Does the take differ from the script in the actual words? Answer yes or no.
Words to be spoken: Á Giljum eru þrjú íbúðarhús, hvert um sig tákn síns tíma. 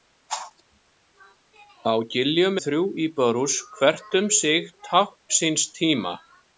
yes